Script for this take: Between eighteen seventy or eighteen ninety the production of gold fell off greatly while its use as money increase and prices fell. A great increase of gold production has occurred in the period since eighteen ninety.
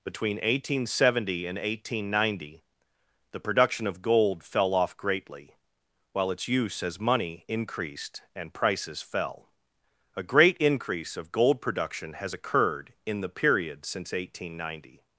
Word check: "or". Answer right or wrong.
wrong